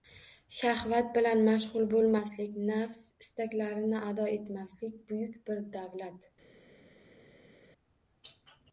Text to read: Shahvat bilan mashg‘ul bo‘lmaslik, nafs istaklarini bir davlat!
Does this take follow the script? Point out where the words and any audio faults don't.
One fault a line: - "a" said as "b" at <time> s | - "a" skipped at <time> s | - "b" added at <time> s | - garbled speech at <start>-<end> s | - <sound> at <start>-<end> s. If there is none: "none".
- "ado etmaslik buyuk" added at 4.1 s